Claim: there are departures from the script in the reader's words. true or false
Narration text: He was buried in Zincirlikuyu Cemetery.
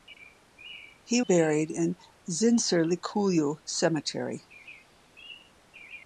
true